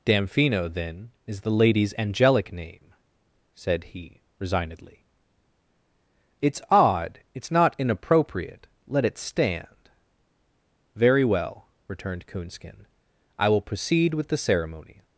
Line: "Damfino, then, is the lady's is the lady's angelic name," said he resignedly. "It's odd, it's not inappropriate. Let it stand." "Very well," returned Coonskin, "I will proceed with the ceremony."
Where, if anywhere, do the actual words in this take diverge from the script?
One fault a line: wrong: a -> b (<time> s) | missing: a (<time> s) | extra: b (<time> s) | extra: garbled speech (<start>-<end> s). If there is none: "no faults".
missing: is the lady's (1.9 s)